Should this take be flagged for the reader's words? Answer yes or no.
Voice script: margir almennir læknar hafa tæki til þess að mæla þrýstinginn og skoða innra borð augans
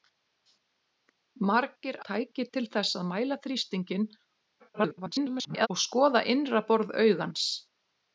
yes